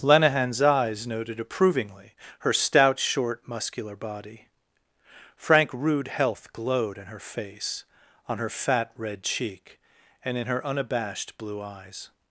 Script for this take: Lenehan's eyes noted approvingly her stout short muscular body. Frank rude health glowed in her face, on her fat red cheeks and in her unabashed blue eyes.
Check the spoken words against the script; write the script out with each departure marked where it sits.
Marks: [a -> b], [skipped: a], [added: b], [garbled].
Lenehan's eyes noted approvingly her stout short muscular body. Frank rude health glowed in her face, on her fat red [cheeks -> cheek] and in her unabashed blue eyes.